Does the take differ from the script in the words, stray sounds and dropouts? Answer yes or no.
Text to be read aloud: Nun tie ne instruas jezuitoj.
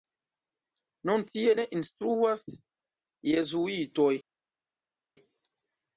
no